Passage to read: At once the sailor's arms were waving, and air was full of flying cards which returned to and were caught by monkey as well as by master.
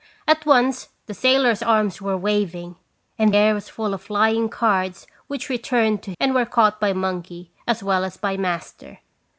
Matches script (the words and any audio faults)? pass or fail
pass